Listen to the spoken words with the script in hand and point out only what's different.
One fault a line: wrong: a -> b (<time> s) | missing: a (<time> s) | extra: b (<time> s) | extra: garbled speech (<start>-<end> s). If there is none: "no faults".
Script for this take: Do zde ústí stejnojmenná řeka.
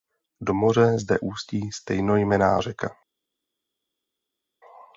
extra: moře (0.5 s)